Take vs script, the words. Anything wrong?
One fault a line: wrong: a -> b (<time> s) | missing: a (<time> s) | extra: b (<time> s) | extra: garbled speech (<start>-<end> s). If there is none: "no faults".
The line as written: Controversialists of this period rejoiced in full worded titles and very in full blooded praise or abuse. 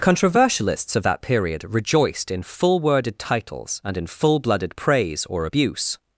wrong: this -> that (1.0 s)
missing: very (4.0 s)